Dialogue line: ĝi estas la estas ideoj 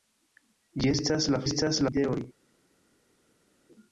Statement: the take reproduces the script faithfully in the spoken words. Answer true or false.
true